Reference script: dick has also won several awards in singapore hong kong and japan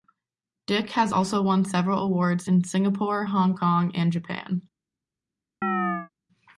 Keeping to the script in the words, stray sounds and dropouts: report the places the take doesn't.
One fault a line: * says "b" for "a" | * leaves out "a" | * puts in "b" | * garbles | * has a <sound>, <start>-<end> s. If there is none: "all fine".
* has a chirp, 5.6-6.1 s